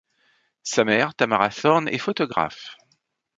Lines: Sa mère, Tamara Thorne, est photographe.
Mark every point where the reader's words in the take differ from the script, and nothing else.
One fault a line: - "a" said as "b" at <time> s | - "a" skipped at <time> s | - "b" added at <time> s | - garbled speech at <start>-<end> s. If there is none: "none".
none